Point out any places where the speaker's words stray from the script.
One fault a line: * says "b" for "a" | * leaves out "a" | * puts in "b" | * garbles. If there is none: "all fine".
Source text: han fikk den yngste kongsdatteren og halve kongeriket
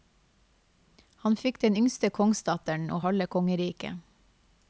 all fine